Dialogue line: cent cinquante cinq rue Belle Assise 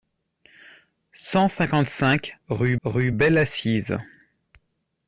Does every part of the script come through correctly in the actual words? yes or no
no